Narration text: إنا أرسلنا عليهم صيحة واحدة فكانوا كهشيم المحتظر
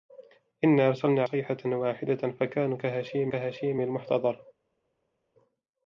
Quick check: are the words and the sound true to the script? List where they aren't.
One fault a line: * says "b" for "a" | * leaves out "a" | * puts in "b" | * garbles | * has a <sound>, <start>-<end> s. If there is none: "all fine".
* leaves out "عليهم"
* puts in "كهشيم"